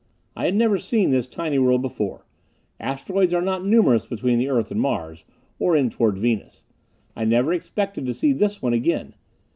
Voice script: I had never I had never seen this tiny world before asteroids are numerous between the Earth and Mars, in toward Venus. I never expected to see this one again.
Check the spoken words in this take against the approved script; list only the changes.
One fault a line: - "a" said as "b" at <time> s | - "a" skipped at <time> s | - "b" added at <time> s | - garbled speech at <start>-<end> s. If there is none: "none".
- "I had never" skipped at 0.8 s
- "not" added at 3.4 s
- "or" added at 5.6 s